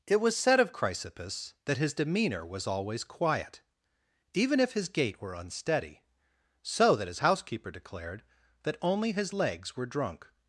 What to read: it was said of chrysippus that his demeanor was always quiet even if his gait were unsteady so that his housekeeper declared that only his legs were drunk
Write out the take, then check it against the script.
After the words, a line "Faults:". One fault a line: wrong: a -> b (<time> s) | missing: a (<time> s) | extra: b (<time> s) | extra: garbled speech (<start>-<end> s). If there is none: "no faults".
it was said of chrysippus that his demeanor was always quiet even if his gait were unsteady so that his housekeeper declared that only his legs were drunk
Faults:
no faults